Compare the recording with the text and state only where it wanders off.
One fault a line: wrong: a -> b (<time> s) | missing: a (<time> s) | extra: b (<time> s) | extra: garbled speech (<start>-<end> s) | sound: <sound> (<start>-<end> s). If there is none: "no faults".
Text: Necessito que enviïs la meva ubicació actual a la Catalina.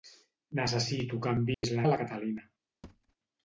sound: dropout (1.5-1.6 s)
missing: meva ubicació actual (1.9 s)
sound: thud (2.8-3.2 s)